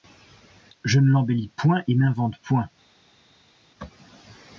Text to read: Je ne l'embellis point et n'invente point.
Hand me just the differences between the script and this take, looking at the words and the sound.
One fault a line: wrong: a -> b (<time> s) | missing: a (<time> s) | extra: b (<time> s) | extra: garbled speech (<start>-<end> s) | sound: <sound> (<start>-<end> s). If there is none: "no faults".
no faults